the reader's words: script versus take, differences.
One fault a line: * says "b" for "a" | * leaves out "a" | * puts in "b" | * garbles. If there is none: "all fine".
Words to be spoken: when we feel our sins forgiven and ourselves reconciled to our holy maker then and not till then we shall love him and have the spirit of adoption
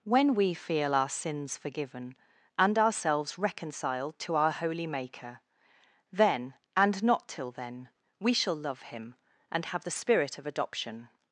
all fine